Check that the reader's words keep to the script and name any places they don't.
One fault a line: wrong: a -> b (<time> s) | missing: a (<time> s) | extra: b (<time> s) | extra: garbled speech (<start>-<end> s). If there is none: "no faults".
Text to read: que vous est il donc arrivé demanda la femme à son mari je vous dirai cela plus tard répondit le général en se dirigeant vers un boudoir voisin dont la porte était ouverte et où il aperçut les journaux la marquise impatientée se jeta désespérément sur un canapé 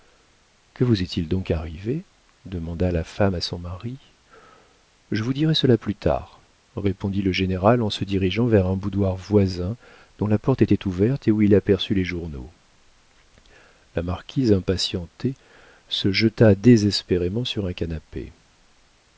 no faults